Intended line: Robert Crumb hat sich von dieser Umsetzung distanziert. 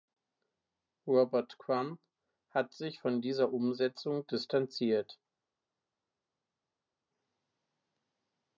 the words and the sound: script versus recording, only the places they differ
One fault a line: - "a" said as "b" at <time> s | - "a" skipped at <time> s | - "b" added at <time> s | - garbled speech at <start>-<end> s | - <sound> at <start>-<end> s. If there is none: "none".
none